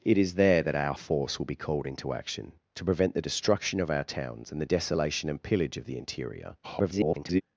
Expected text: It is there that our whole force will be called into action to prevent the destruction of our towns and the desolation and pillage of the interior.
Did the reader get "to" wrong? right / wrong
right